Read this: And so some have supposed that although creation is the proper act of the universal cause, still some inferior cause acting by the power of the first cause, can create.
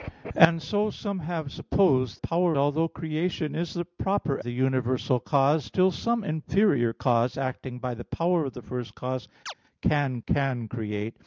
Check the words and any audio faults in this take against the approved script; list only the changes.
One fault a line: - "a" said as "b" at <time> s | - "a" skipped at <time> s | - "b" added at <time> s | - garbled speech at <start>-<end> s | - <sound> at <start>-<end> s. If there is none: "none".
- "that" said as "power" at 2.2 s
- "act of" skipped at 4.4 s
- chirp at 9.5-9.5 s
- "can" added at 10.3 s